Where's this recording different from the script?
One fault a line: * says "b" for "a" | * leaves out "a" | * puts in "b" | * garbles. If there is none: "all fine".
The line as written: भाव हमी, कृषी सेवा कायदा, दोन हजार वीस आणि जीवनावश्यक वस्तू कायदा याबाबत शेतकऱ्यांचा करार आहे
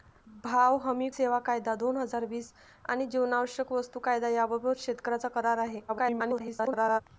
* leaves out "कृषी"
* garbles